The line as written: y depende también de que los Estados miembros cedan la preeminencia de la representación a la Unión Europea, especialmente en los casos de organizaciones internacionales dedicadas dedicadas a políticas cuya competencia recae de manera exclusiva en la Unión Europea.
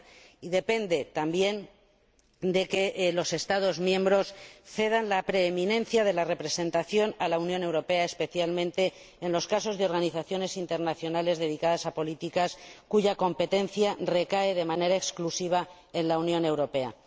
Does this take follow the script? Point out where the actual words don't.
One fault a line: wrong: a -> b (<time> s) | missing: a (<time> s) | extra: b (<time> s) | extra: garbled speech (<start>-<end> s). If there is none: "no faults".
missing: dedicadas (11.8 s)